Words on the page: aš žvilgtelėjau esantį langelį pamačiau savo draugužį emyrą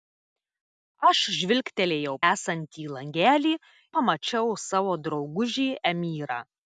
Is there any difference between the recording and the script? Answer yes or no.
no